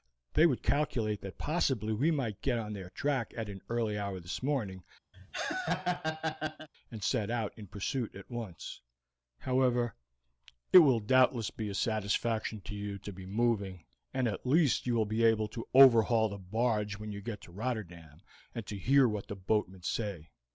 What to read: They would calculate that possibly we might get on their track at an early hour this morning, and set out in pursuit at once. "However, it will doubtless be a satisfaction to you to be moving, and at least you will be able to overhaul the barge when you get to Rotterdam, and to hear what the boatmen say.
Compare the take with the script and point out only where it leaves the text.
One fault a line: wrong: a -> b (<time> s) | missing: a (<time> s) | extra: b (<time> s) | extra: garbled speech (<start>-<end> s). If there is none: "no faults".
no faults